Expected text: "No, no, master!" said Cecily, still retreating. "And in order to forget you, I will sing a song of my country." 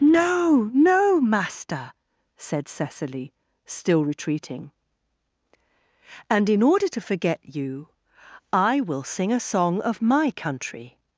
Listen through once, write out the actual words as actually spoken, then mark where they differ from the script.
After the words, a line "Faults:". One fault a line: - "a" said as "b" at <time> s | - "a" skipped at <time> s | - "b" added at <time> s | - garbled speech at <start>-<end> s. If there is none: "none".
"No, no, master!" said Cecily, still retreating. "And in order to forget you, I will sing a song of my country."
Faults:
none